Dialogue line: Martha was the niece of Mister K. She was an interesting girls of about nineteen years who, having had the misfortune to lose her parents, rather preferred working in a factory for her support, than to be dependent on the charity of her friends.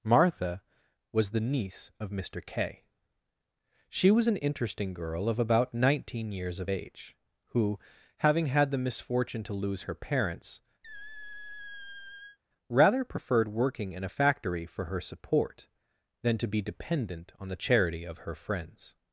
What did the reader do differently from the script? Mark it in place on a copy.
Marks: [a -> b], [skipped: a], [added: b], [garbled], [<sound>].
Martha was the niece of Mister K. She was an interesting [girls -> girl] of about nineteen years [added: of age] who, having had the misfortune to lose her parents, [squeak] rather preferred working in a factory for her support, than to be dependent on the charity of her friends.